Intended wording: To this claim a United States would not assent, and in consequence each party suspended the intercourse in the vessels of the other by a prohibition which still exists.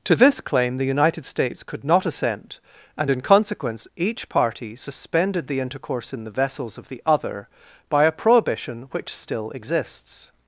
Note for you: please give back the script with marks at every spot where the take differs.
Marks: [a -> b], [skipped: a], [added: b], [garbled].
To this claim [a -> the] United States [would -> could] not assent, and in consequence each party suspended the intercourse in the vessels of the other by a prohibition which still exists.